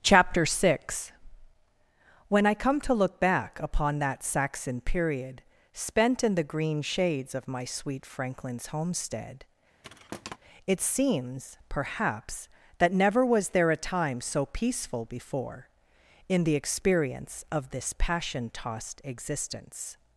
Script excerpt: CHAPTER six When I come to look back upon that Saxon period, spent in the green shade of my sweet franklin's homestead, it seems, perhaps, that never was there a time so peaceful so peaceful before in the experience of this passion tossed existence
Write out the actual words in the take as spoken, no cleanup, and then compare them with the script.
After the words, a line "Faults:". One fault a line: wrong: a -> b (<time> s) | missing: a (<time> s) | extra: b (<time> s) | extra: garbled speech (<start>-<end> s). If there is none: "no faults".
CHAPTER six When I come to look back upon that Saxon period, spent in the green shades of my sweet franklin's homestead, it seems, perhaps, that never was there a time so peaceful before in the experience of this passion tossed existence
Faults:
wrong: shade -> shades (6.8 s)
missing: so peaceful (15.0 s)